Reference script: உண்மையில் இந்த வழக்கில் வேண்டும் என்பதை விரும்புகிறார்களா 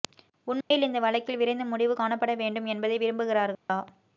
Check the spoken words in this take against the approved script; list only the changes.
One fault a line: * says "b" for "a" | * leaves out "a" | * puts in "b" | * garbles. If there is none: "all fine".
* puts in "விரைந்து முடிவு காணப்பட"